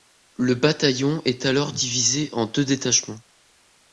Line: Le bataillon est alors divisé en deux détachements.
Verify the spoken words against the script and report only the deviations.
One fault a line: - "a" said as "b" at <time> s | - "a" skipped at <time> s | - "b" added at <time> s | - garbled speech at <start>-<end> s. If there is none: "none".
none